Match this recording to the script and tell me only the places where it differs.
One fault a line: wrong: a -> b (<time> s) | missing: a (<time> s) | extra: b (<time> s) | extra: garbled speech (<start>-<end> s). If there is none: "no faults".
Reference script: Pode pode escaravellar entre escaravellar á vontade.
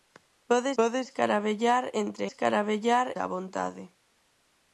no faults